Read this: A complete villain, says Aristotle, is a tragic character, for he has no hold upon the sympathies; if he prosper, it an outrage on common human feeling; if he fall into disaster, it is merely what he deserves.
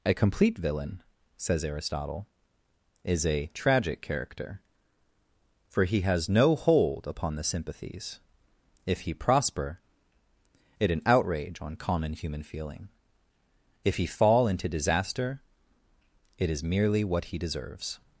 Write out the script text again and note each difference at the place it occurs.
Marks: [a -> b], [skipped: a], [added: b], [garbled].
A complete villain, says Aristotle, is a tragic character, for he has no hold upon the sympathies; if he prosper, it an outrage on common human feeling; if he fall into disaster, it is merely what he deserves.